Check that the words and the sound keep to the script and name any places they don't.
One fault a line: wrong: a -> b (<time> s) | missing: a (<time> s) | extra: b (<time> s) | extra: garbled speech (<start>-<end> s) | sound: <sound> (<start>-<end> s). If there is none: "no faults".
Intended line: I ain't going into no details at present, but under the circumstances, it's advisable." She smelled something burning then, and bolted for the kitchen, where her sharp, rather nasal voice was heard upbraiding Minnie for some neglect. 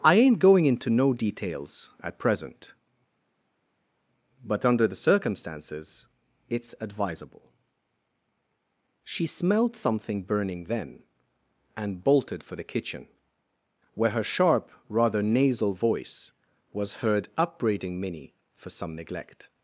no faults